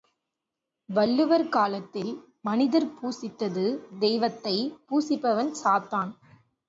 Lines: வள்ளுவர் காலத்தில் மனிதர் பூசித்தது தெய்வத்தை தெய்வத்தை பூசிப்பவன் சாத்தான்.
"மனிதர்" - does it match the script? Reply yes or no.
yes